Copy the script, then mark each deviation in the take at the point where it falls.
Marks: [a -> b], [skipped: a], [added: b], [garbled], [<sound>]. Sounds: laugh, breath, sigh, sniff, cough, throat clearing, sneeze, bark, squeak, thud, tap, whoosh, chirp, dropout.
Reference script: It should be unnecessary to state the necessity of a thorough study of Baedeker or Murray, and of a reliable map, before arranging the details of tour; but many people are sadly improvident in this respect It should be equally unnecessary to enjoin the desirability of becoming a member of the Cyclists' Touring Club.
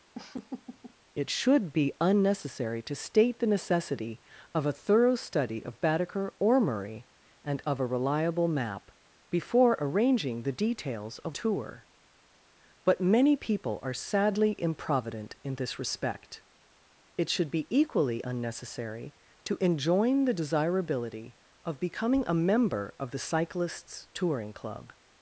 [laugh] It should be unnecessary to state the necessity of a thorough study of Baedeker or Murray, and of a reliable map, before arranging the details of tour; but many people are sadly improvident in this respect It should be equally unnecessary to enjoin the desirability of becoming a member of the Cyclists' Touring Club.